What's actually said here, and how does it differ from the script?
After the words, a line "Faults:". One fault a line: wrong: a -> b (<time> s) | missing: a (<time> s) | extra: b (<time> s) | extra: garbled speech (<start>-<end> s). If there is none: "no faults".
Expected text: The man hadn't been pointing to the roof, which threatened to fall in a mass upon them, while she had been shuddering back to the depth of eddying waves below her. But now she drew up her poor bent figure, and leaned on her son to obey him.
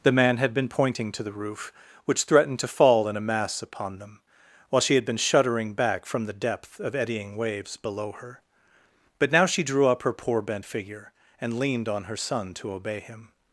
The man had been pointing to the roof, which threatened to fall in a mass upon them, while she had been shuddering back from the depth of eddying waves below her. But now she drew up her poor bent figure, and leaned on her son to obey him.
Faults:
wrong: hadn't -> had (0.4 s)
wrong: to -> from (6.1 s)